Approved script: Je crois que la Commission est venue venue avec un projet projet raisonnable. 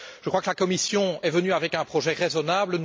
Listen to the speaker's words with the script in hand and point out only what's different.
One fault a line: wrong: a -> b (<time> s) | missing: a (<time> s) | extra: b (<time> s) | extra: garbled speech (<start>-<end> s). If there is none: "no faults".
missing: venue (1.5 s)
missing: projet (2.1 s)